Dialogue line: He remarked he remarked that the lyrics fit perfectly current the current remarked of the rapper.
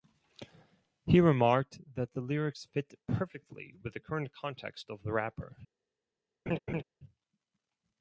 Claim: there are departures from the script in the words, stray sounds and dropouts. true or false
true